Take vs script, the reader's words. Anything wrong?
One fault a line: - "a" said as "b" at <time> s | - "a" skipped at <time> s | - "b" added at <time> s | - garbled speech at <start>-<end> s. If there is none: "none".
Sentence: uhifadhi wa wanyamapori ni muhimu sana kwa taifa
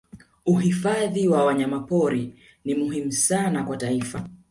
none